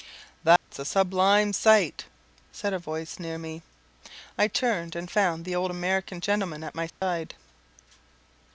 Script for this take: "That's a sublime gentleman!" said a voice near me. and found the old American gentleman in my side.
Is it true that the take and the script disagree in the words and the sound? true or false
true